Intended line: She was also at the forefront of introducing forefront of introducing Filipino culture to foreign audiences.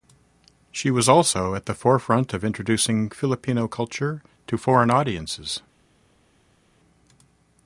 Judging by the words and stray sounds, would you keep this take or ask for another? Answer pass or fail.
fail